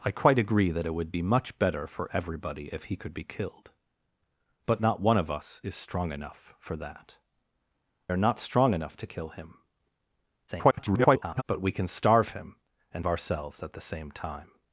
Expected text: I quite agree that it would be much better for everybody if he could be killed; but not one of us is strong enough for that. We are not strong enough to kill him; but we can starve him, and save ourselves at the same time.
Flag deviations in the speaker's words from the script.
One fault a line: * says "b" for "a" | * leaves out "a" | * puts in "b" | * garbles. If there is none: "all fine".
* leaves out "We"
* garbles
* leaves out "save"